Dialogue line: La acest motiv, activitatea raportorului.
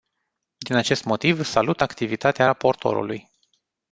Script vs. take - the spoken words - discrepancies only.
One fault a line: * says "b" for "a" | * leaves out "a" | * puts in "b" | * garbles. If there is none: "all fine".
* says "Din" for "La"
* puts in "salut"